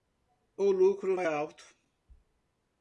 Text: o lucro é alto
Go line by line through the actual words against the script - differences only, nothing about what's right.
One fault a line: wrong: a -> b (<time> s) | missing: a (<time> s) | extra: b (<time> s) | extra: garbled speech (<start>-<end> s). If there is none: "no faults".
no faults